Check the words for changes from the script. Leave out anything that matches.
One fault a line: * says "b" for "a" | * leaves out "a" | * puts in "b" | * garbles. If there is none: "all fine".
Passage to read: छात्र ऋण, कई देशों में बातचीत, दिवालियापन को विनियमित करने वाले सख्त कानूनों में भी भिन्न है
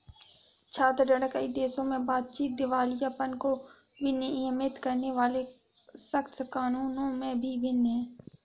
all fine